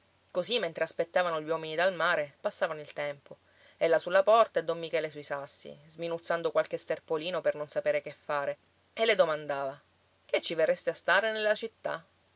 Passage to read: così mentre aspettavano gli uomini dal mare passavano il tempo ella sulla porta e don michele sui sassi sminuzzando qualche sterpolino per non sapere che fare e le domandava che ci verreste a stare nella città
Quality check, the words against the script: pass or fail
pass